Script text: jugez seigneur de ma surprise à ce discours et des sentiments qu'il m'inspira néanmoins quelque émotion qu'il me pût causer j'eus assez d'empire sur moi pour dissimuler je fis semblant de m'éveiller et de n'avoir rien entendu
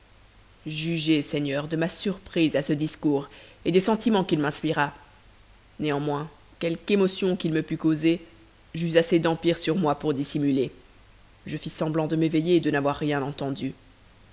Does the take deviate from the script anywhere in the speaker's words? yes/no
no